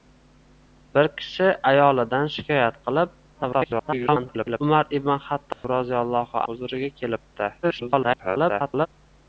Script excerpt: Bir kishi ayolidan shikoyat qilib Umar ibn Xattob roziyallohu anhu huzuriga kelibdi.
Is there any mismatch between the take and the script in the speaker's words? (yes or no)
yes